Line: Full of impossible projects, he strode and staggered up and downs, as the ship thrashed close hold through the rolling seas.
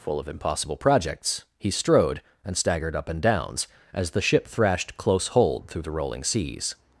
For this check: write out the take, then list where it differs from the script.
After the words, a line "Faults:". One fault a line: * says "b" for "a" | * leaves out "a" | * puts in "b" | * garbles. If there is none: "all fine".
Full of impossible projects, he strode and staggered up and downs, as the ship thrashed close hold through the rolling seas.
Faults:
all fine